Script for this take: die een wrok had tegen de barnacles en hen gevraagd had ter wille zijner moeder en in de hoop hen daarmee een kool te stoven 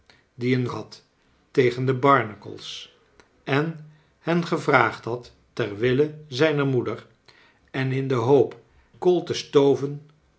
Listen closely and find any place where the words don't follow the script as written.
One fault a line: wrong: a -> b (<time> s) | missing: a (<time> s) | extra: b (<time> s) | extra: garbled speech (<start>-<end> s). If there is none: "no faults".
missing: wrok (0.7 s)
missing: hen daarmee een (8.6 s)